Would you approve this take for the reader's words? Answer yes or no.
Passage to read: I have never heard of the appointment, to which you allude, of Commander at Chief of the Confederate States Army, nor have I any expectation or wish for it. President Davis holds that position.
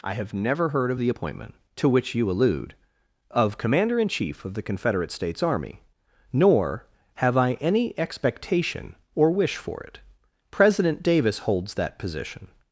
no